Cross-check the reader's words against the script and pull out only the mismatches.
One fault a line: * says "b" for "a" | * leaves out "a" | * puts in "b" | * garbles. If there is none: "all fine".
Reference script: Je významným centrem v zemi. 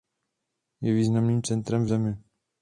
all fine